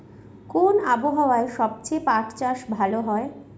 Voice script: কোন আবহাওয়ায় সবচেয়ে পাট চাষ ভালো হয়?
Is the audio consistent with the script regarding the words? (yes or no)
yes